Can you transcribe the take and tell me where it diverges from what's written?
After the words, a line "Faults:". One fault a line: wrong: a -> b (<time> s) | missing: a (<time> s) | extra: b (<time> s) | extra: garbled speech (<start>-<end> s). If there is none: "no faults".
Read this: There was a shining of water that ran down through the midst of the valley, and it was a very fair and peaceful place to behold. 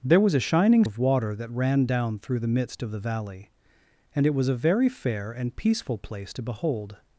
There was a shining of water that ran down through the midst of the valley, and it was a very fair and peaceful place to behold.
Faults:
no faults